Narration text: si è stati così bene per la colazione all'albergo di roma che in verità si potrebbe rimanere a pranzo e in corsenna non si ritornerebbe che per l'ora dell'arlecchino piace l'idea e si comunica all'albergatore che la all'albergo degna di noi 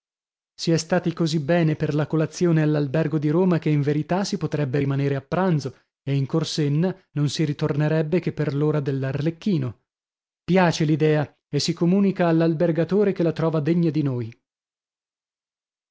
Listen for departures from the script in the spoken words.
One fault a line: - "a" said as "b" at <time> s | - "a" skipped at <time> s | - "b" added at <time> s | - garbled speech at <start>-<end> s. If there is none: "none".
- "all'albergo" said as "trova" at 13.3 s